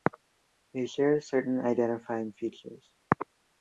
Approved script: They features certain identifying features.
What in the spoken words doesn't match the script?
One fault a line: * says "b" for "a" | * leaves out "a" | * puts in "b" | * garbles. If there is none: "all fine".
* says "share" for "features"